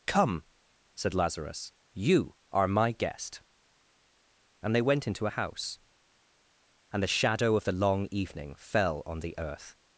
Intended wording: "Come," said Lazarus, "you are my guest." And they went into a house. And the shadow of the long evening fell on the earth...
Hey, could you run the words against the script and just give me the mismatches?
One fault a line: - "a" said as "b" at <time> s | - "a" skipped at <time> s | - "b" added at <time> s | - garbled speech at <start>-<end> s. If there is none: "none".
none